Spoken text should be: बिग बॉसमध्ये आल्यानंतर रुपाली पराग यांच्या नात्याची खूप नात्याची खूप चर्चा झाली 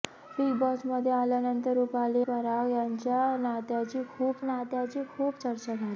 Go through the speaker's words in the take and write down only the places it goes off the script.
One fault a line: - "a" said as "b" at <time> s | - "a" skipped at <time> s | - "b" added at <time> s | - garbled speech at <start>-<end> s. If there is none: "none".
none